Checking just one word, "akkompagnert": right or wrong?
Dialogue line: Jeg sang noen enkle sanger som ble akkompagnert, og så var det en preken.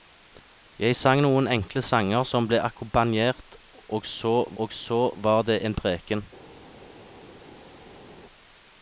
right